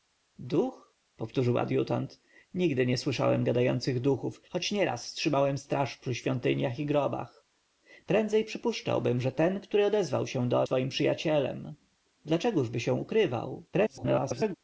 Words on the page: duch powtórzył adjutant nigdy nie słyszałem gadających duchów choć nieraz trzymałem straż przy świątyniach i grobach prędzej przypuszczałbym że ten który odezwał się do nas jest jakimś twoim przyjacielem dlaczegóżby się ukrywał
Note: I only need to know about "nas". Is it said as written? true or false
false